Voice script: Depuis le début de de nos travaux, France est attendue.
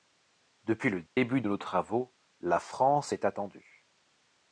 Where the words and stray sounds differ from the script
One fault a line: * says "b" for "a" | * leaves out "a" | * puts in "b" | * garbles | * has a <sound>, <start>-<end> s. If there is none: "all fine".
* has a dropout, 1.1-1.2 s
* leaves out "de"
* puts in "la"